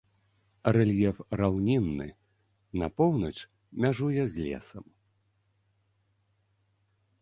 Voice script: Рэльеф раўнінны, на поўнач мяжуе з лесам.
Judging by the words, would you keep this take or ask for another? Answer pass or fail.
pass